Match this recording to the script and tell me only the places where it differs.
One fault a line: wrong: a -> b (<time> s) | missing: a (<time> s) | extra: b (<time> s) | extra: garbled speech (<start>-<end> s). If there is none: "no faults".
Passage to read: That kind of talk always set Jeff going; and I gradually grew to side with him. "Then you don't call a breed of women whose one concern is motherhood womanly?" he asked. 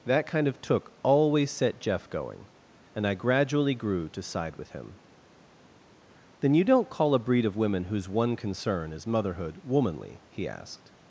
wrong: talk -> took (0.6 s)